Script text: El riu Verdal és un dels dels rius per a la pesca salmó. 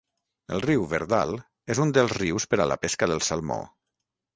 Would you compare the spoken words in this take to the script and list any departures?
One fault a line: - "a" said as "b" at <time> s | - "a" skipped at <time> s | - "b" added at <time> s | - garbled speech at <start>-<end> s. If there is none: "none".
- "dels" skipped at 2.2 s
- "del" added at 3.1 s